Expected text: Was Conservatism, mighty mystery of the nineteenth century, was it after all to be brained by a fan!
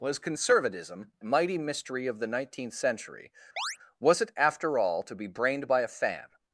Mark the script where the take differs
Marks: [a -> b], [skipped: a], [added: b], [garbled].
Was Conservatism, mighty mystery of the nineteenth century, was it after all to be brained by a fan!